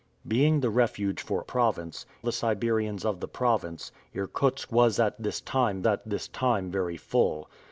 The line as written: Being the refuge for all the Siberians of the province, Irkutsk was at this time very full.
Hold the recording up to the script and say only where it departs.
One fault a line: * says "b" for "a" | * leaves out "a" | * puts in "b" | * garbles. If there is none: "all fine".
* says "province" for "all"
* puts in "at this time"